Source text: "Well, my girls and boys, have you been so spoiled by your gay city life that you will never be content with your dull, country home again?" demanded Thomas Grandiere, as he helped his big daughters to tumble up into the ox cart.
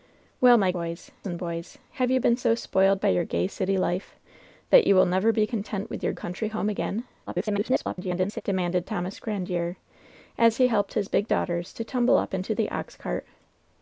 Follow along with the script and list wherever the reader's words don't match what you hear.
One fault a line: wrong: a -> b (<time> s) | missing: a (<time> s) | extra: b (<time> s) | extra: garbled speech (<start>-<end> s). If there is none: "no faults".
wrong: girls -> boys (0.7 s)
missing: dull (6.1 s)
extra: garbled speech (7.3-8.4 s)